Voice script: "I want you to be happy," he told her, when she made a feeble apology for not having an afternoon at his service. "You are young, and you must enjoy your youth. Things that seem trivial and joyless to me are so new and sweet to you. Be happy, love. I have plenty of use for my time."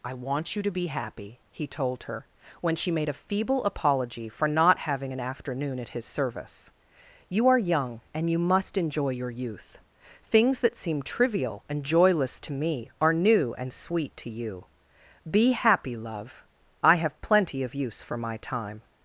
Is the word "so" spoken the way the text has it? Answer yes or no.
no